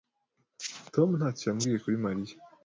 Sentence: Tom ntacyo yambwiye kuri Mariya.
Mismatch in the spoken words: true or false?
false